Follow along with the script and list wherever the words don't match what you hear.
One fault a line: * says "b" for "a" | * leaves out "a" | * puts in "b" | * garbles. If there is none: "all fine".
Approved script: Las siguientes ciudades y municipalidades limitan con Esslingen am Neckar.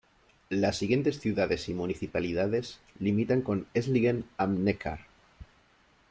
all fine